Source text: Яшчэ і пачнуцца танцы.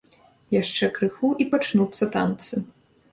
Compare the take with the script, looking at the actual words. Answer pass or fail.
fail